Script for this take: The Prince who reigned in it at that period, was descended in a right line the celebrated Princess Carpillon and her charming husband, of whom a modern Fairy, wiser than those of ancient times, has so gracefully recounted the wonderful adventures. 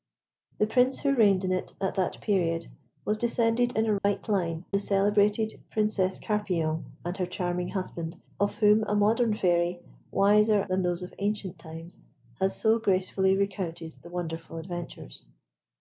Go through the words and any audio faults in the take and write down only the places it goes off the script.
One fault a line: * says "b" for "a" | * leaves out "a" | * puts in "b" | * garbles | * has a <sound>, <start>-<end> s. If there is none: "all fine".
* has a dropout, 4.0-4.0 s